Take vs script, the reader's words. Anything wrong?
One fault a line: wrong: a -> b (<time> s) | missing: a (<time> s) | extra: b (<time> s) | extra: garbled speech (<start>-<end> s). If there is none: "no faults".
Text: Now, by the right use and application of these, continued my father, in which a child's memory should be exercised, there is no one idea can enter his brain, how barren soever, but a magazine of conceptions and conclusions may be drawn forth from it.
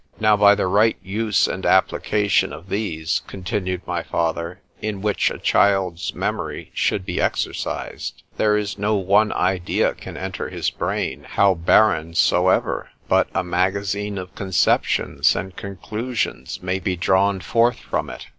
no faults